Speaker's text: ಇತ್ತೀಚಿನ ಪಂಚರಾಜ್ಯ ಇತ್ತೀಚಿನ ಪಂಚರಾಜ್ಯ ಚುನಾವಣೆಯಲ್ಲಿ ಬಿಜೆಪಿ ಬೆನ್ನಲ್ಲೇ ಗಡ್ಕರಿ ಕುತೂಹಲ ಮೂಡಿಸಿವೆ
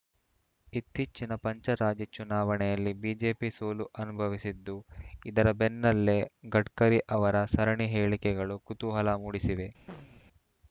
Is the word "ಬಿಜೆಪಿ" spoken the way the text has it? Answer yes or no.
no